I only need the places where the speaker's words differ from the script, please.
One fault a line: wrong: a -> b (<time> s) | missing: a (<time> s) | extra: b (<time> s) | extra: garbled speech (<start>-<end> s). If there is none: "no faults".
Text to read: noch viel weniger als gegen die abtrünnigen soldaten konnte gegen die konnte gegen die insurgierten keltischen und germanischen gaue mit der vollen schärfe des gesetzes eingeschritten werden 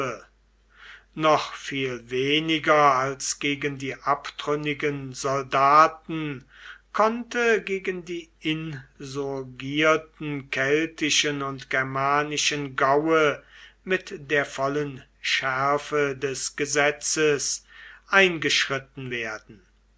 missing: konnte gegen die (8.3 s)